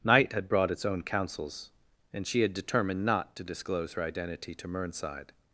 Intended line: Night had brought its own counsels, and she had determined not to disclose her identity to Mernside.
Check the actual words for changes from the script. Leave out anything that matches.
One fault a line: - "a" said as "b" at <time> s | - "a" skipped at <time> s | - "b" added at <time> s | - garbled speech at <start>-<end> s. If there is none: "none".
none